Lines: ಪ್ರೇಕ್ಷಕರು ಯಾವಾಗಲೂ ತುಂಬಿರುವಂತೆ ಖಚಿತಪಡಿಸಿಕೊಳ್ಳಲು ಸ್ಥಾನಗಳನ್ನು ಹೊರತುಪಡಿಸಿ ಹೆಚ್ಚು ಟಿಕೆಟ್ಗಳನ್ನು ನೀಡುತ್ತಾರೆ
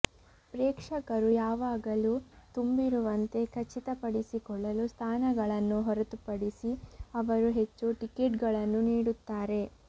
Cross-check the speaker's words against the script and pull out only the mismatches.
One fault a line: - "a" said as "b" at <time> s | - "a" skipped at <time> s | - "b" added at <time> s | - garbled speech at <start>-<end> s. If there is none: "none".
- "ಅವರು" added at 7.2 s